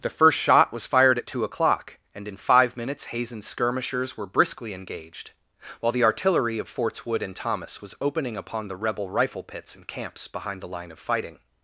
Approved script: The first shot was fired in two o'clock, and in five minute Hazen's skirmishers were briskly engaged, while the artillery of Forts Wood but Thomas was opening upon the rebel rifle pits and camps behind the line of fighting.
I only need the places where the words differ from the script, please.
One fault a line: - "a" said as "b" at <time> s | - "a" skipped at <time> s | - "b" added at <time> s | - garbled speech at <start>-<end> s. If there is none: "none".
- "in" said as "at" at 1.2 s
- "minute" said as "minutes" at 2.8 s
- "but" said as "and" at 7.2 s